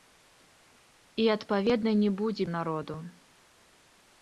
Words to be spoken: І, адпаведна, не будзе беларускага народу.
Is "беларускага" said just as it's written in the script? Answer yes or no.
no